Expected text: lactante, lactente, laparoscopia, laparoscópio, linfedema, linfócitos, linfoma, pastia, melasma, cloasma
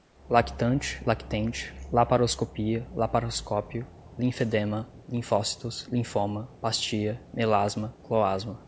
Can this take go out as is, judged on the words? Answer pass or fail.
pass